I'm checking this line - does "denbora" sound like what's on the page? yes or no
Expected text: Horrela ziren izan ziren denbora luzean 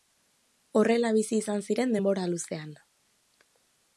yes